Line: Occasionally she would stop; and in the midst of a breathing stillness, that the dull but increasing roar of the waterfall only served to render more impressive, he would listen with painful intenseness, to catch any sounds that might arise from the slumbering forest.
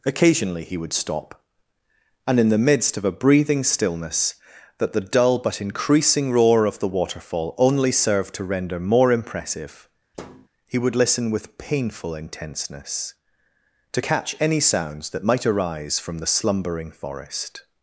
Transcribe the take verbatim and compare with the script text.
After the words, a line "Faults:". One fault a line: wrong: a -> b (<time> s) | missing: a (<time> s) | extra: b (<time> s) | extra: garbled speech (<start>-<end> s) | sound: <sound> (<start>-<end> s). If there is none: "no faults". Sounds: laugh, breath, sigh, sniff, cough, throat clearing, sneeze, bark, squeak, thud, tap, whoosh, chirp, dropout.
Occasionally he would stop; and in the midst of a breathing stillness, that the dull but increasing roar of the waterfall only served to render more impressive, he would listen with painful intenseness, to catch any sounds that might arise from the slumbering forest.
Faults:
wrong: she -> he (0.6 s)
sound: thud (10.1-10.5 s)